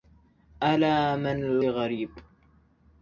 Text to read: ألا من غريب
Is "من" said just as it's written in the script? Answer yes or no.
yes